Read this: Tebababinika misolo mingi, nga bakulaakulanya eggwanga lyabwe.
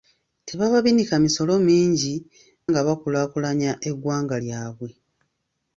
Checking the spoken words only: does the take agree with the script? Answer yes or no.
yes